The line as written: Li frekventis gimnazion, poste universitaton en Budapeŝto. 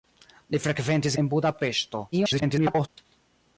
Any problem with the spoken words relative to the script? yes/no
yes